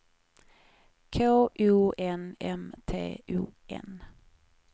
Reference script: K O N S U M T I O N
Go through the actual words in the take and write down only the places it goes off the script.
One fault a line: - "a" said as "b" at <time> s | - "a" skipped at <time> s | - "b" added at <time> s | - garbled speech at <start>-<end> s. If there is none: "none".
- "S U" skipped at 2.3 s
- "I" skipped at 3.2 s